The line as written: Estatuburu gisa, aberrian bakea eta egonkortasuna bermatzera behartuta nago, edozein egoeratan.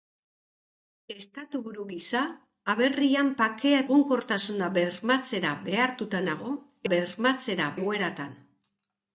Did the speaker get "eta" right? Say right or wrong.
wrong